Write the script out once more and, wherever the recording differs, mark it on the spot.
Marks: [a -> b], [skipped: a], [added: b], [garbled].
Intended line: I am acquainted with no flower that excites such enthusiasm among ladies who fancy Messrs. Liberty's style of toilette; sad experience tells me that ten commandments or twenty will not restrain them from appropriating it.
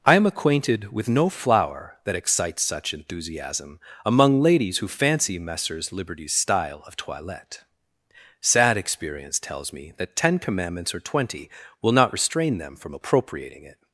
I am acquainted with no flower that excites such enthusiasm among ladies who fancy Messrs. Liberty's style of toilette; sad experience tells me that ten commandments or twenty will not restrain them from appropriating it.